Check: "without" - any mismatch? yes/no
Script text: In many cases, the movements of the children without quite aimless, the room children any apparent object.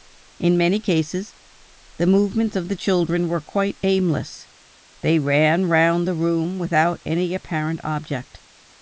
yes